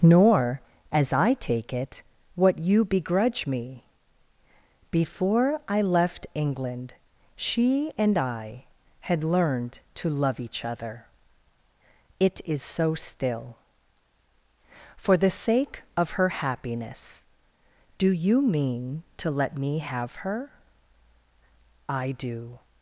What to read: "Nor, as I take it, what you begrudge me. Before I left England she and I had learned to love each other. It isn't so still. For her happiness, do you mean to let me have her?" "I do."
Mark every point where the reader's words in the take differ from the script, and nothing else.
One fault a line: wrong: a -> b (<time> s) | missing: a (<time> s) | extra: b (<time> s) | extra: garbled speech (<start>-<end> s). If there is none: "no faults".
wrong: isn't -> is (12.4 s)
extra: the sake of (15.2 s)